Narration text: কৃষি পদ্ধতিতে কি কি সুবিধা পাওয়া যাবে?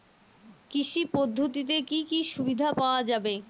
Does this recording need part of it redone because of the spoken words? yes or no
no